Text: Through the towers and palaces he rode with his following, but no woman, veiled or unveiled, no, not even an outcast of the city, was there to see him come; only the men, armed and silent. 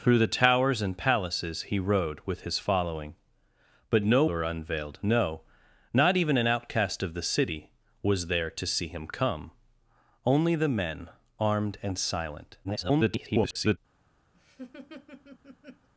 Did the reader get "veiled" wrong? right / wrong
wrong